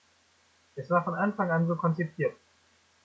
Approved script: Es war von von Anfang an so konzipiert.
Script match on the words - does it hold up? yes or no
no